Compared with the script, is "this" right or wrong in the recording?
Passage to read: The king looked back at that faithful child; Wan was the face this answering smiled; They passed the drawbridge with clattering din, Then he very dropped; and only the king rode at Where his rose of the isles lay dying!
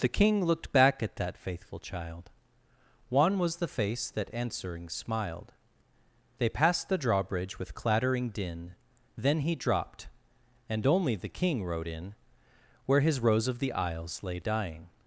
wrong